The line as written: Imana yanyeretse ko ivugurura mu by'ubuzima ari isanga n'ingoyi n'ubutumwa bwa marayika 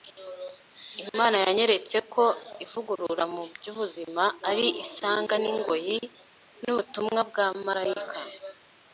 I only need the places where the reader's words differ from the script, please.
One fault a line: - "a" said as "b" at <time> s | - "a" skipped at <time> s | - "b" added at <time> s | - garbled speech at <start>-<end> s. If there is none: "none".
none